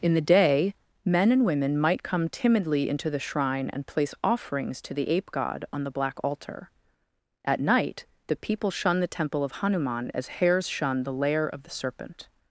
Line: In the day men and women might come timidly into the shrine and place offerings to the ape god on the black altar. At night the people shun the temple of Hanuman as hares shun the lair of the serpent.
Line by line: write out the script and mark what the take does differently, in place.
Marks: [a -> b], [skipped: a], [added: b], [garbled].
In the day men and women might come timidly into the shrine and place offerings to the ape god on the black altar. At night the people shun the temple of Hanuman as hares shun the lair of the serpent.